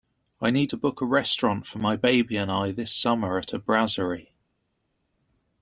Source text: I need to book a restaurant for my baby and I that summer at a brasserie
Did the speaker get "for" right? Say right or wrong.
right